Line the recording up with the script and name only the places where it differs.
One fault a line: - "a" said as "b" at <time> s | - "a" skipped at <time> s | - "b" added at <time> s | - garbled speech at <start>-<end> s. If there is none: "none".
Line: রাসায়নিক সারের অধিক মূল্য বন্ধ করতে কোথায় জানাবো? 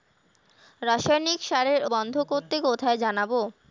- "অধিক মূল্য" skipped at 1.8 s